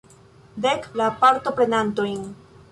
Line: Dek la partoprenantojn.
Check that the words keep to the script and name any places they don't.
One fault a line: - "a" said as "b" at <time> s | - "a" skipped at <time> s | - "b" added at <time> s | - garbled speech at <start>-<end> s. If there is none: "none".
none